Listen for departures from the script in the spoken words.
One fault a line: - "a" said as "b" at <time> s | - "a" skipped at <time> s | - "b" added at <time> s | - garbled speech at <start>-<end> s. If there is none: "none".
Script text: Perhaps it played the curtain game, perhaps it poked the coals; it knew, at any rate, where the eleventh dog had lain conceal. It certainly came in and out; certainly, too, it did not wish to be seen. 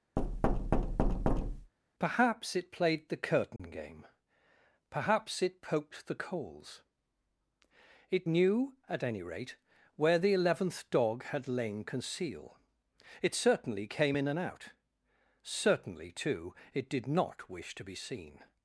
none